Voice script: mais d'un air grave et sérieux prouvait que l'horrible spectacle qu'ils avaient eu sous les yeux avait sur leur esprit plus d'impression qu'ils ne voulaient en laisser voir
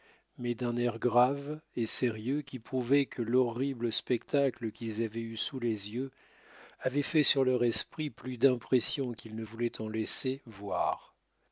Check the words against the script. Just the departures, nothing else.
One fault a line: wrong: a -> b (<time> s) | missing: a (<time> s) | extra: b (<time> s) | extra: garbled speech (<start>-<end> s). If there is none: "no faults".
extra: qui (2.4 s)
extra: fait (7.0 s)